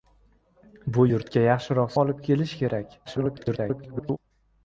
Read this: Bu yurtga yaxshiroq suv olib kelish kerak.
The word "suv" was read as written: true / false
false